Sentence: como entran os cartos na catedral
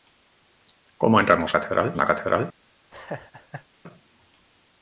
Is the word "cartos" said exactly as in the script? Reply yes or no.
no